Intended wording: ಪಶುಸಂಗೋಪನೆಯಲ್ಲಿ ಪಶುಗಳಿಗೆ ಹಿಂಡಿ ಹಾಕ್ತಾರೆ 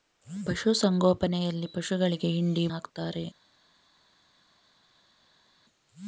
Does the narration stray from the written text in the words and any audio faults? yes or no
no